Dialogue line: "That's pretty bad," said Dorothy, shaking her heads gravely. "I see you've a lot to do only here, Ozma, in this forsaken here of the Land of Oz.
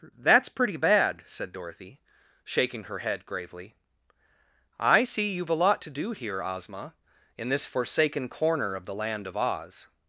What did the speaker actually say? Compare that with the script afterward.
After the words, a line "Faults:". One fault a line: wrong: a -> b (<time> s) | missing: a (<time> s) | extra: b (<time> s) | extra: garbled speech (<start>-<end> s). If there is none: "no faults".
"That's pretty bad," said Dorothy, shaking her head gravely. "I see you've a lot to do here, Ozma, in this forsaken corner of the Land of Oz.
Faults:
wrong: heads -> head (3.0 s)
missing: only (6.1 s)
wrong: here -> corner (8.3 s)